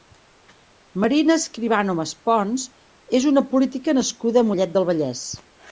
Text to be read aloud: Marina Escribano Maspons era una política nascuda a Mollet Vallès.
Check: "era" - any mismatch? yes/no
yes